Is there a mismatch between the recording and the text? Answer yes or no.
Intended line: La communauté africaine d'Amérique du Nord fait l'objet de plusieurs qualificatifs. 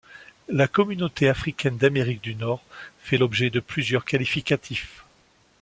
no